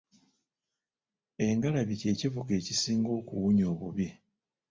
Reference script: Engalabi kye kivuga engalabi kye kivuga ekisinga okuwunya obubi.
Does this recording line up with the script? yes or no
no